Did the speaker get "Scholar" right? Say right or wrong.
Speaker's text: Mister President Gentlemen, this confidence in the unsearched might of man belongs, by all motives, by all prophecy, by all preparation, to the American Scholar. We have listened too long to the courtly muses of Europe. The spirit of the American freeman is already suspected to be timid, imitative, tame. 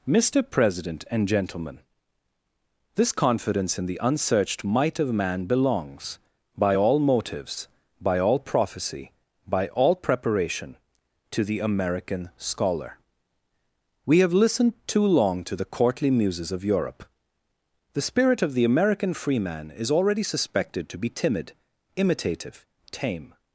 right